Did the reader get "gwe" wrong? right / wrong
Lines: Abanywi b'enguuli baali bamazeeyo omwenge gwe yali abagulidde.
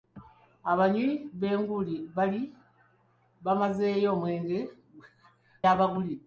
wrong